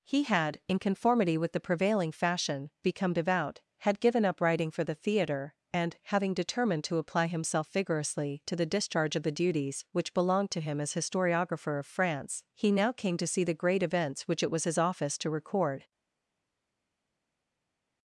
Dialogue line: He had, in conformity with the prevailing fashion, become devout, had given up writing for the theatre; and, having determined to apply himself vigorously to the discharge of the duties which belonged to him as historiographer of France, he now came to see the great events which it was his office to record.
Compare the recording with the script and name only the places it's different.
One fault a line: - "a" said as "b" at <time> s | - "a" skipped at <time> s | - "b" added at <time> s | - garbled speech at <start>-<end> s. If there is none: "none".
none